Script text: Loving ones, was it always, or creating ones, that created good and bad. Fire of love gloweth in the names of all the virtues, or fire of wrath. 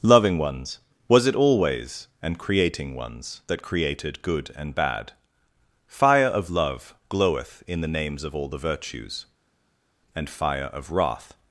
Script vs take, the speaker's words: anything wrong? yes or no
yes